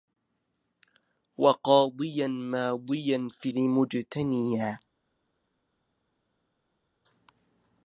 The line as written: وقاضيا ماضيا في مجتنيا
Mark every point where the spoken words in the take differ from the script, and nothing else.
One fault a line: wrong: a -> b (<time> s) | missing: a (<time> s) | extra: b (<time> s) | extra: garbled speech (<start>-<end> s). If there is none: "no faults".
no faults